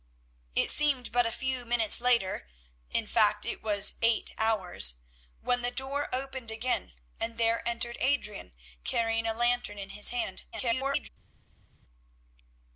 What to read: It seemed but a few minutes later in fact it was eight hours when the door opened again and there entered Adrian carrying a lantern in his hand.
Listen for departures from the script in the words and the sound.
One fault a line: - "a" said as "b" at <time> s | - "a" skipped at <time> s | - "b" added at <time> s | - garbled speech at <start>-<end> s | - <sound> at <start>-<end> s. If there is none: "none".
- garbled speech at 10.5-11.1 s